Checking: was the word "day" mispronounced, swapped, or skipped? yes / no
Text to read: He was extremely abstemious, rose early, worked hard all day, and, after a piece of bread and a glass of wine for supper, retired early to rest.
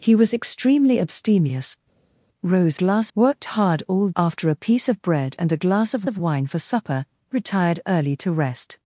yes